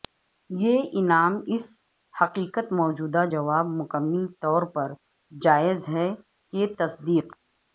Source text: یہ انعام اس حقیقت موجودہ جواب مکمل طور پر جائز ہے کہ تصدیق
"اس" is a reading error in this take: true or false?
false